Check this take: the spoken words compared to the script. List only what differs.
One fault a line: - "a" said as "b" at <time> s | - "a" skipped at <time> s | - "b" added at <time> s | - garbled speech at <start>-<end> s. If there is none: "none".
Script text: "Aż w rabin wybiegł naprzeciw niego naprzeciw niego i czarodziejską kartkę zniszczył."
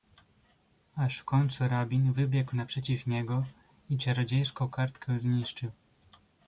- "końcu" added at 1.2 s
- "naprzeciw niego" skipped at 3.5 s